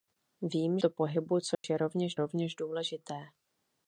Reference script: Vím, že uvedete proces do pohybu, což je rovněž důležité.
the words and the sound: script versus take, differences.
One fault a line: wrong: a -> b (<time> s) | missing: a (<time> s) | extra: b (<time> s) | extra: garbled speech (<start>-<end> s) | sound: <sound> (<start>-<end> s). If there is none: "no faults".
missing: že uvedete proces (0.8 s)
sound: dropout (1.5-1.6 s)
extra: rovněž (2.1 s)